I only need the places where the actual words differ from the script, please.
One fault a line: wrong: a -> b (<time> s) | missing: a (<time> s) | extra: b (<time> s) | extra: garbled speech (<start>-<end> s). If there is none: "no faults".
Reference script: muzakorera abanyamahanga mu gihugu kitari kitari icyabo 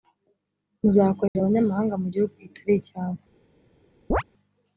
missing: kitari (2.7 s)